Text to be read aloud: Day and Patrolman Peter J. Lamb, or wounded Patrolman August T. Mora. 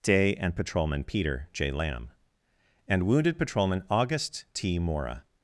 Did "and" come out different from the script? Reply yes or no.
no